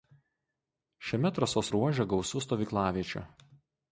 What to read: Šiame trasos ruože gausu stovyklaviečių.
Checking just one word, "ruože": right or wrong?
right